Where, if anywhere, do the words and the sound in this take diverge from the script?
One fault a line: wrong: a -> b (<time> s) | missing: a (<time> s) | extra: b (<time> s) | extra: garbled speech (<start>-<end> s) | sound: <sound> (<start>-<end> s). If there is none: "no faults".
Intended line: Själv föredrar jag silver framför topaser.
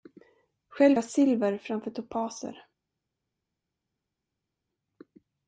missing: föredrar (1.0 s)